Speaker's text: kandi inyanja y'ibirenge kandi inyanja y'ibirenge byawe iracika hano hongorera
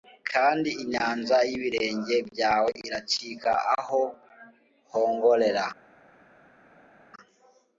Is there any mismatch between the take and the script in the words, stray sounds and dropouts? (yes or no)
yes